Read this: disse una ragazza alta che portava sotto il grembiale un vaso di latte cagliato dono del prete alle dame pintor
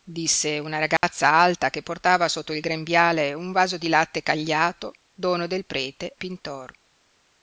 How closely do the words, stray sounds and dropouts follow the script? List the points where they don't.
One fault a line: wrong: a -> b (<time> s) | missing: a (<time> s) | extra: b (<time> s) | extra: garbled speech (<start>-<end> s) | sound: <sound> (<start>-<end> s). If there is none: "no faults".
sound: dropout (1.0-1.0 s)
missing: alle dame (6.2 s)